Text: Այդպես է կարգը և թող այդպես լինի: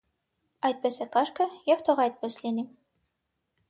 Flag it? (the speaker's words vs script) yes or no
no